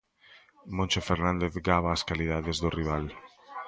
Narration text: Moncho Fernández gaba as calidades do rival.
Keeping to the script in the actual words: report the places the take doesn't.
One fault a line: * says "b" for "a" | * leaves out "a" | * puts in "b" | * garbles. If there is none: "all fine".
all fine